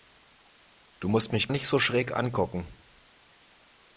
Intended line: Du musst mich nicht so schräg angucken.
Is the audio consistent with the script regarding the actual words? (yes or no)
yes